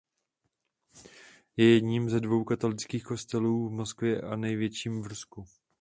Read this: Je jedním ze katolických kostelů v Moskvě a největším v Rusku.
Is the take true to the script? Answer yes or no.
no